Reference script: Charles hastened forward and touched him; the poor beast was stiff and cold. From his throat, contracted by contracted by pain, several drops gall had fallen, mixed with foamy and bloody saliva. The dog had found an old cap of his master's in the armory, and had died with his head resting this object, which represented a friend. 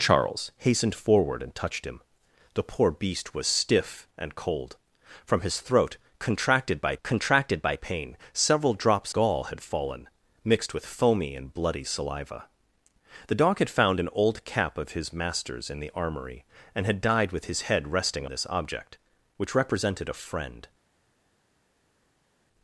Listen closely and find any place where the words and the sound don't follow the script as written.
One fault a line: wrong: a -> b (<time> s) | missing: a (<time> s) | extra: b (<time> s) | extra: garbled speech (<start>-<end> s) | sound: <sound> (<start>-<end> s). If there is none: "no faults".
no faults